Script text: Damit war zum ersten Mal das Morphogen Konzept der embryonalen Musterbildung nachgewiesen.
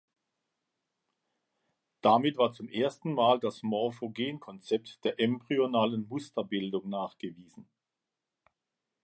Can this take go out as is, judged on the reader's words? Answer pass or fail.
pass